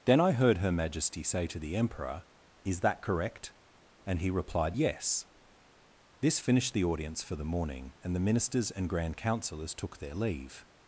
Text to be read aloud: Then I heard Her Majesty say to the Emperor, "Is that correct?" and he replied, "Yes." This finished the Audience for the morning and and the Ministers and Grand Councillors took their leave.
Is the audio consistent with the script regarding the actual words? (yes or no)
no